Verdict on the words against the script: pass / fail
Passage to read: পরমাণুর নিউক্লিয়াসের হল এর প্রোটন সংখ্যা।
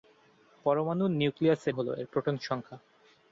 pass